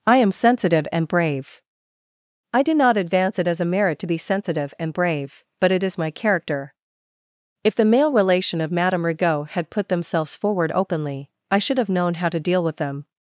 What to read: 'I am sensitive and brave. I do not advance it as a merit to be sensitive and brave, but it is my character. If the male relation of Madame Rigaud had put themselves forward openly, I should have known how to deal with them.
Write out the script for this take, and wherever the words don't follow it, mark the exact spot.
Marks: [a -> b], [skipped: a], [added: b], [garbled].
'I am sensitive and brave. I do not advance it as a merit to be sensitive and brave, but it is my character. If the male relation of Madame Rigaud had put themselves forward openly, I should have known how to deal with them.